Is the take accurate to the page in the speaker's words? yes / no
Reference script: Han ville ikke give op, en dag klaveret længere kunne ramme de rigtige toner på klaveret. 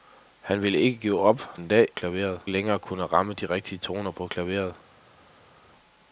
yes